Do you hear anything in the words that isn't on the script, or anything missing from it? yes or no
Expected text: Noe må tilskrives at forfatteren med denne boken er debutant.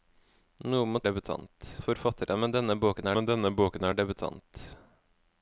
yes